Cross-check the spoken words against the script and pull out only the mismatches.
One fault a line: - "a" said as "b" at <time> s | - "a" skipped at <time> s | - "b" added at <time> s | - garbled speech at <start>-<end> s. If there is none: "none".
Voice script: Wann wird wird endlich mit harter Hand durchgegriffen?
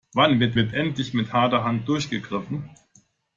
none